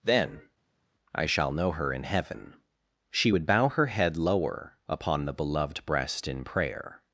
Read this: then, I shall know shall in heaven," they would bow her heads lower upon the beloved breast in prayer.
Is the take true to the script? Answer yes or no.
no